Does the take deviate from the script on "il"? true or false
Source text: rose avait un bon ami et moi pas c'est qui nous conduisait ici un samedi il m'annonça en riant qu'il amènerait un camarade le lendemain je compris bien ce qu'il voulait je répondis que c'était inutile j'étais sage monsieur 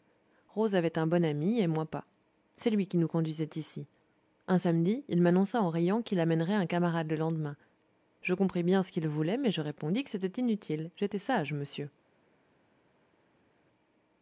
false